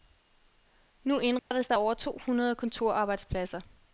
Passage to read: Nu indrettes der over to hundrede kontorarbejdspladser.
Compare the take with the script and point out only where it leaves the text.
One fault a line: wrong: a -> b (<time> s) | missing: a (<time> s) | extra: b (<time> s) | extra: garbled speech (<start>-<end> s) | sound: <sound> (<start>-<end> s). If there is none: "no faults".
sound: dropout (1.4-1.5 s)